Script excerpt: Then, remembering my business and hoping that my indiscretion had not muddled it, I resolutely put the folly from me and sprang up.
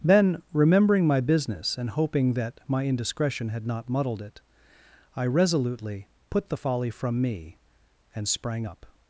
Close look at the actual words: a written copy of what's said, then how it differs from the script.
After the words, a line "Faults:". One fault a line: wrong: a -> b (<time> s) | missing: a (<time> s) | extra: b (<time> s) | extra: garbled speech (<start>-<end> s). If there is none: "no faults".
Then, remembering my business and hoping that my indiscretion had not muddled it, I resolutely put the folly from me and sprang up.
Faults:
no faults